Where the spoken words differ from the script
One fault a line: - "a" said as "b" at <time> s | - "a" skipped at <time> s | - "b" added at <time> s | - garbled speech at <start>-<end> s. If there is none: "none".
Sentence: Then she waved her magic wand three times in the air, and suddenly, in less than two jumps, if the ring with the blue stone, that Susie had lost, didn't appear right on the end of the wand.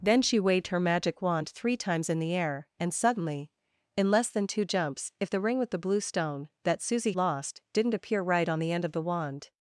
- "had" skipped at 7.1 s